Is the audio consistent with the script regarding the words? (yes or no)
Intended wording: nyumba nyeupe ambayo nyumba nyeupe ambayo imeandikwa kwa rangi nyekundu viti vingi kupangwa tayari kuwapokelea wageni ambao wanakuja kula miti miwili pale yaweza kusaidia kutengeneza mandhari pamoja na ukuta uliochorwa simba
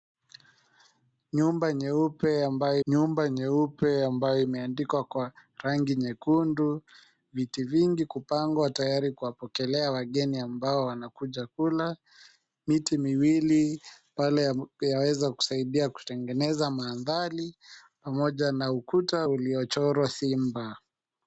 yes